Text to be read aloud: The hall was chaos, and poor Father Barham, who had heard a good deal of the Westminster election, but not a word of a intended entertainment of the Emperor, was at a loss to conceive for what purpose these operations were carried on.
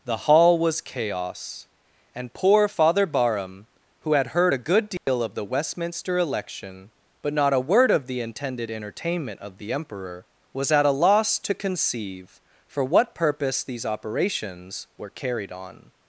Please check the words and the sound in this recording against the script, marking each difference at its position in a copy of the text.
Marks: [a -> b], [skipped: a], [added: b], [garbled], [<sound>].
The hall was chaos, and poor Father Barham, who had heard a good deal [dropout] of the Westminster election, but not a word of [a -> the] intended entertainment of the Emperor, was at a loss to conceive for what purpose these operations were carried on.